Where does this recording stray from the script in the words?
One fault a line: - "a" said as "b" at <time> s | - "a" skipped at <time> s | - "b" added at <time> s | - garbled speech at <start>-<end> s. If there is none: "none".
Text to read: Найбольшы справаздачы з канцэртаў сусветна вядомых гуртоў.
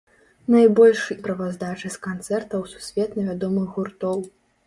none